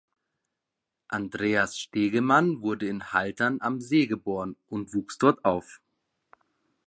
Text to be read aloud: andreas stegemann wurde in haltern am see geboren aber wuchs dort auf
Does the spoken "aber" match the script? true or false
false